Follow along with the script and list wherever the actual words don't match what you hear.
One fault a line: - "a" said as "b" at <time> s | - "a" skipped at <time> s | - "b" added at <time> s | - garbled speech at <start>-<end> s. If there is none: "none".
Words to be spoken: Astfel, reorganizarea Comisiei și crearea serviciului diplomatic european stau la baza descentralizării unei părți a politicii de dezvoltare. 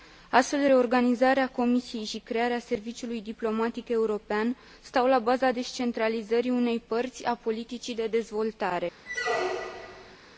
none